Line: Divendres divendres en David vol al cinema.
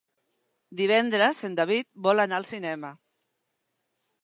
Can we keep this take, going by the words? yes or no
no